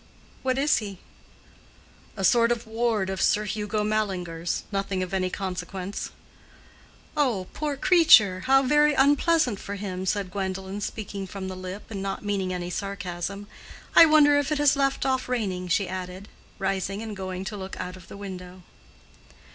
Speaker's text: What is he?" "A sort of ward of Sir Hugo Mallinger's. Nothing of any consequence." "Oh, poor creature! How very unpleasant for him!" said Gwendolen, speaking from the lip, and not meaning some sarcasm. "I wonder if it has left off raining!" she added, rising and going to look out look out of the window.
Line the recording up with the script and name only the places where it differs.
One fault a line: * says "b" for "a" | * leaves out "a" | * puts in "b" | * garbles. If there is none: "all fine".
* says "any" for "some"
* leaves out "look out"